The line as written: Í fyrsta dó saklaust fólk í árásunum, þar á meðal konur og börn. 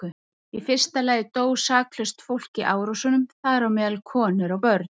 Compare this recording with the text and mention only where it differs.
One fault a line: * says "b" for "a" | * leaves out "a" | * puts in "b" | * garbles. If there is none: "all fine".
* puts in "lagi"